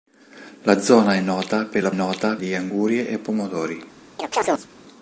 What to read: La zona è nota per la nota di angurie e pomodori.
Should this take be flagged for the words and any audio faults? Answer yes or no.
yes